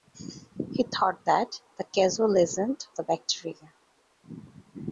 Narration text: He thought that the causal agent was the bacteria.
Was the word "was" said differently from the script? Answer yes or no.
yes